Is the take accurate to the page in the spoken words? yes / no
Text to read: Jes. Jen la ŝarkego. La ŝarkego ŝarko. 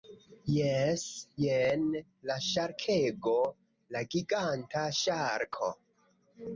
no